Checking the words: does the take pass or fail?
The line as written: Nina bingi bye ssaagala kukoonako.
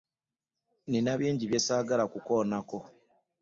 pass